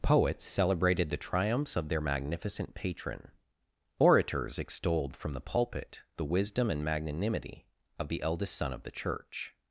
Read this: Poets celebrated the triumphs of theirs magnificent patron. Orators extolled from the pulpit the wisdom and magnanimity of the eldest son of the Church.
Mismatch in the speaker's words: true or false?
true